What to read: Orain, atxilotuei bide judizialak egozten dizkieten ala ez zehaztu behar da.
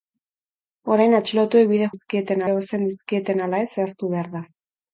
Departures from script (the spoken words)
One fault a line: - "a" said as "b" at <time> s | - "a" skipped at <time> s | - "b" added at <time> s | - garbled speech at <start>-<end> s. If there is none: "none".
- "judizialak" said as "dizkieten" at 1.9 s